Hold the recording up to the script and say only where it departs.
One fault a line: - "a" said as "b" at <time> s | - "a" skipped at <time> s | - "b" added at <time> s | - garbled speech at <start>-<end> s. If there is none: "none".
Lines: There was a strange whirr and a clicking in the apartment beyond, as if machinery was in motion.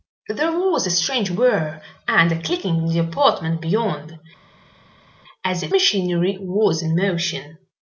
none